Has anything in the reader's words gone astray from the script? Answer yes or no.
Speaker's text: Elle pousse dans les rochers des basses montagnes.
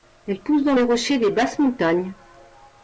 no